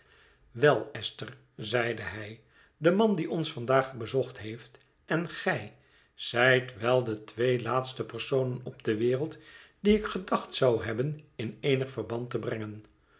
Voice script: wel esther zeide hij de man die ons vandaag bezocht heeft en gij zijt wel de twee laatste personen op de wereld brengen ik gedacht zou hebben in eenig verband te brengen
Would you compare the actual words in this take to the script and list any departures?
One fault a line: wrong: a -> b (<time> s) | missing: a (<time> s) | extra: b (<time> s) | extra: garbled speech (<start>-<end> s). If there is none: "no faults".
wrong: brengen -> die (9.8 s)